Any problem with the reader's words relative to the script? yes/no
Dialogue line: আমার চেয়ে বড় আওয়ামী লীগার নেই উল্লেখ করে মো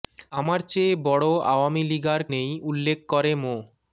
no